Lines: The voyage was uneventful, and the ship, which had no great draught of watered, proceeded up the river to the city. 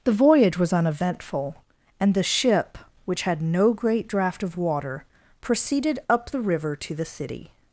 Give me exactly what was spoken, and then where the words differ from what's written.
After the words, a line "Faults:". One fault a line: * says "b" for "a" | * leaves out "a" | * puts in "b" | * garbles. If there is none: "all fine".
The voyage was uneventful, and the ship, which had no great draught of water, proceeded up the river to the city.
Faults:
* says "water" for "watered"